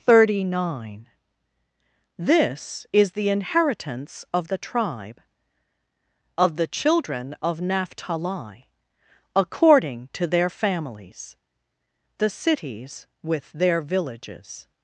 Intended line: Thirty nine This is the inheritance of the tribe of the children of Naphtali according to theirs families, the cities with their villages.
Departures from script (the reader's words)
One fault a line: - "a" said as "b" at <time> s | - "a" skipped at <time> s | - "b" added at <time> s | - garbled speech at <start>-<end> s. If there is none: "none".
- "theirs" said as "their" at 10.3 s